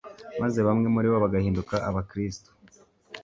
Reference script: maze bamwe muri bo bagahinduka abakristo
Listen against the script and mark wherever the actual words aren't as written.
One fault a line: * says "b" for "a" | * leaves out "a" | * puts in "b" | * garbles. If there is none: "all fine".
all fine